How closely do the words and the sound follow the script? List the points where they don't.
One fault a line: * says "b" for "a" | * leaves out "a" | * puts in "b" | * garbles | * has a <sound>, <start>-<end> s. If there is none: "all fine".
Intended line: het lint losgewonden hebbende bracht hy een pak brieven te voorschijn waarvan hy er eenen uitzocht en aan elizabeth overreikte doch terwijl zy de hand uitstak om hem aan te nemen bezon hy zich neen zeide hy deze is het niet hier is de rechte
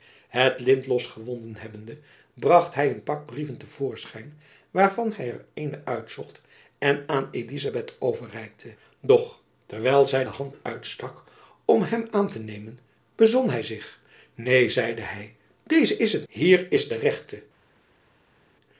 * leaves out "niet"